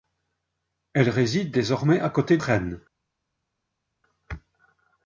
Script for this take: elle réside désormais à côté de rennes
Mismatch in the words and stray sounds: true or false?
true